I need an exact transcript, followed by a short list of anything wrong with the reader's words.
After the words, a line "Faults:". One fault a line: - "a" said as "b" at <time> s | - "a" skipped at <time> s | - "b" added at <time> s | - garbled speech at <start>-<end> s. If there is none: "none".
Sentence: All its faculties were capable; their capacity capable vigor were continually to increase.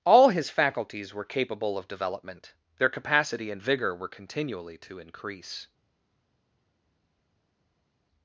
All his faculties were capable of development; their capacity and vigor were continually to increase.
Faults:
- "its" said as "his" at 0.3 s
- "of development" added at 1.8 s
- "capable" said as "and" at 3.5 s